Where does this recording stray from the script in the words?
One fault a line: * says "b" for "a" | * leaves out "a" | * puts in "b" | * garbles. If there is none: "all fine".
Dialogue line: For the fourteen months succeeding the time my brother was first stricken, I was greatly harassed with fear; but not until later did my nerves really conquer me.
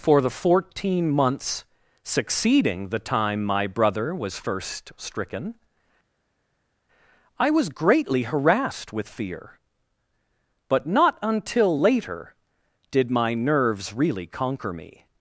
all fine